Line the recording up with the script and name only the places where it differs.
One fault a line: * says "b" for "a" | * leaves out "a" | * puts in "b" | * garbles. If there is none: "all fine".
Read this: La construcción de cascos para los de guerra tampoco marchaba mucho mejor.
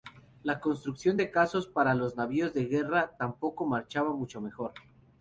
* puts in "navíos"